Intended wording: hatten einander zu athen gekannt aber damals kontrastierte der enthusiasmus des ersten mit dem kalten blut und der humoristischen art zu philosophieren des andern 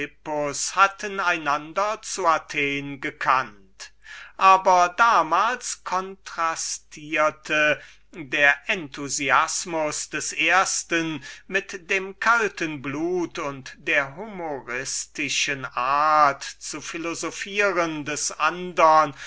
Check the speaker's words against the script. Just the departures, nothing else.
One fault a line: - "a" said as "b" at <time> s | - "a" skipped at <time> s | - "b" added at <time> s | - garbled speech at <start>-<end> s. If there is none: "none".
none